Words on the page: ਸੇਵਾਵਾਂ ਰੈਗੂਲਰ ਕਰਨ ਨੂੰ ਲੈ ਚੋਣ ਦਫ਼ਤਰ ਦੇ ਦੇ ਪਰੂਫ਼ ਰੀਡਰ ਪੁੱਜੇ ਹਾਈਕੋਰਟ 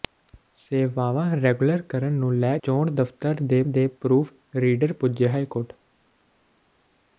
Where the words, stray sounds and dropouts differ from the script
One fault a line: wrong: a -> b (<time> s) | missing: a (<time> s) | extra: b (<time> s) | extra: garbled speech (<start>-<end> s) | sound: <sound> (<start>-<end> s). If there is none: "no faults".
no faults